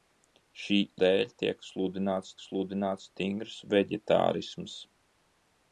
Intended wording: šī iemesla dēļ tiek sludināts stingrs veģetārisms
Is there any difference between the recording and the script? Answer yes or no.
yes